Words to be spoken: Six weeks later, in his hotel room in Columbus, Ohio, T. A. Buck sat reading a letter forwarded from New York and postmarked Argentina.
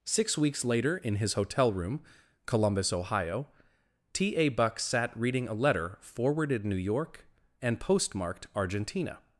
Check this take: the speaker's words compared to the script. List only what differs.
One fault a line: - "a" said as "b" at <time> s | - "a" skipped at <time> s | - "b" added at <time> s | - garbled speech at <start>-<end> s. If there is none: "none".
- "in" skipped at 2.0 s
- "from" skipped at 6.6 s